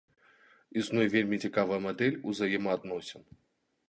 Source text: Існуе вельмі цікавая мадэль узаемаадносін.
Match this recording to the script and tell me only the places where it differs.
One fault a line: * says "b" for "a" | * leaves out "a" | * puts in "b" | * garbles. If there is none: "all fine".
all fine